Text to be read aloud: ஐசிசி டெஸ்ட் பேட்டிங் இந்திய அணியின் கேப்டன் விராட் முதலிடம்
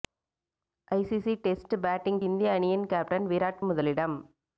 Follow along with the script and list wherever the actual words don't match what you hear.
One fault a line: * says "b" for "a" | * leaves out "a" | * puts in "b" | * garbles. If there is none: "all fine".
all fine